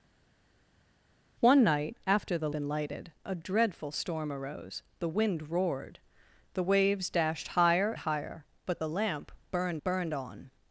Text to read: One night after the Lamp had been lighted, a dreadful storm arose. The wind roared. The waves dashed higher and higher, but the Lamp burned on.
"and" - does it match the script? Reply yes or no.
no